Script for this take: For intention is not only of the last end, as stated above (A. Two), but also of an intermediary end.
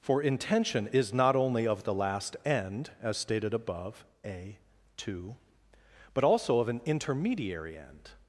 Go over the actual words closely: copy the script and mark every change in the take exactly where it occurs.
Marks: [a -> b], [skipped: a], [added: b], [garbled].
For intention is not only of the last end, as stated above (A. Two), but also of an intermediary end.